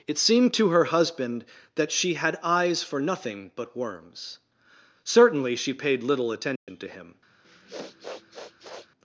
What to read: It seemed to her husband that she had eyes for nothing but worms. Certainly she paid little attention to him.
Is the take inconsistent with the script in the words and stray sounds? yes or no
yes